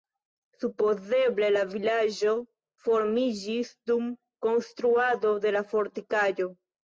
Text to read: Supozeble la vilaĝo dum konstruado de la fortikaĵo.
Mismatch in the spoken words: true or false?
true